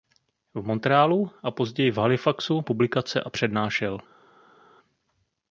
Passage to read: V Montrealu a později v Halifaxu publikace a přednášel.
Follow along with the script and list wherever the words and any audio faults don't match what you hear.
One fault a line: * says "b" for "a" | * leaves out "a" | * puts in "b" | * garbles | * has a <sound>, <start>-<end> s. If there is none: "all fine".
all fine